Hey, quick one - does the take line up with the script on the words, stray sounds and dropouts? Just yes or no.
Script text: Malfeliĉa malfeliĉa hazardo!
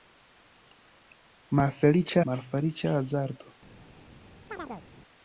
no